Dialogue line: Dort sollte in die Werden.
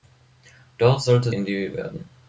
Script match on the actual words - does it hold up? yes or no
yes